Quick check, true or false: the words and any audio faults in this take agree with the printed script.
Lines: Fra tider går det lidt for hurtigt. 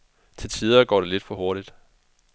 false